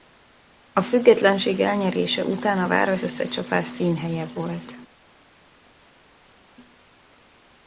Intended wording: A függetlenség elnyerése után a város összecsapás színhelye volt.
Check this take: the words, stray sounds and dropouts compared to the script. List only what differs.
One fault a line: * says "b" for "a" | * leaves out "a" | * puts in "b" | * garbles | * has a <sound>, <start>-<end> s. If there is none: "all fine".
all fine